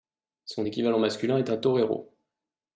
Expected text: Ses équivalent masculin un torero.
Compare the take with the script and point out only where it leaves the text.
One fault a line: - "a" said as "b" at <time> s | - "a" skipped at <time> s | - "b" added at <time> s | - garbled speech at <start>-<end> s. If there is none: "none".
- "Ses" said as "Son" at 0.5 s
- "est" added at 1.4 s